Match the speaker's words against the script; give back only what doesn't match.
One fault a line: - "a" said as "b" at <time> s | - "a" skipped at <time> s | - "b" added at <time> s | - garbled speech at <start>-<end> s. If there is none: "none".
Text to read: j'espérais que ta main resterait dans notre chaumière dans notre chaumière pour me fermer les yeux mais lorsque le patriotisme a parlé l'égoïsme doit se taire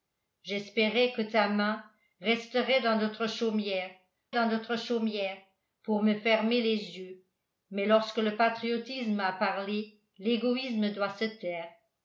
none